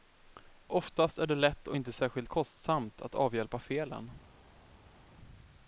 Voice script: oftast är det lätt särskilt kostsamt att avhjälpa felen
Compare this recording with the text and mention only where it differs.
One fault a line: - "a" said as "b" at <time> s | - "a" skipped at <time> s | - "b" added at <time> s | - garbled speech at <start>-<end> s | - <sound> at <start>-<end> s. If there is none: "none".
- "och inte" added at 1.7 s